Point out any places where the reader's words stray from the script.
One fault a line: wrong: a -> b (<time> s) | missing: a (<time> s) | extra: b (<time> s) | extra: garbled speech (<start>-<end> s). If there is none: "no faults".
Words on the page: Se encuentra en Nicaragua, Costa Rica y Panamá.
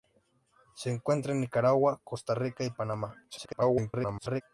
extra: garbled speech (3.3-4.4 s)